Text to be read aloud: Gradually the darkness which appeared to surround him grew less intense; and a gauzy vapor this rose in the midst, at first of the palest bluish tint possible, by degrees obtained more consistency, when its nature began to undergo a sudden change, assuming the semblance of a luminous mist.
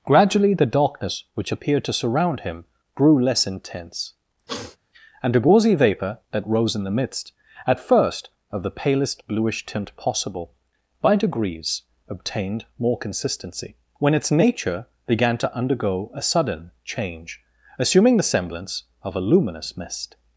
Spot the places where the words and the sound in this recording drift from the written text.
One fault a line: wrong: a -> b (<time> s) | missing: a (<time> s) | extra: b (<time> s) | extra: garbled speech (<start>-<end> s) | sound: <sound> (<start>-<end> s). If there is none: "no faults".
sound: sniff (4.5-4.8 s)
wrong: this -> that (6.3 s)